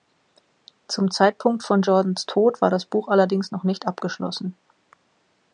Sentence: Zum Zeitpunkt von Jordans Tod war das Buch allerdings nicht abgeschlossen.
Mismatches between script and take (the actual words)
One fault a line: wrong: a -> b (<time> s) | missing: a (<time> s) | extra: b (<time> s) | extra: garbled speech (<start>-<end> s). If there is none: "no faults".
extra: noch (3.5 s)